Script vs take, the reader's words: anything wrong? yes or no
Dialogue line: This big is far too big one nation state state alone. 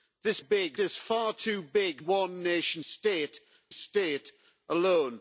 no